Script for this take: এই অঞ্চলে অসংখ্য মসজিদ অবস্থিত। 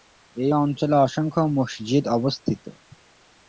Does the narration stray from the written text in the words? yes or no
no